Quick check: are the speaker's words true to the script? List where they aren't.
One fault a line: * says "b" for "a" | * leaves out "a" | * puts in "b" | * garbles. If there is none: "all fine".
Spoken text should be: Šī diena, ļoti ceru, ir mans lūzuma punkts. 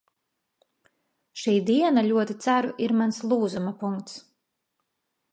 all fine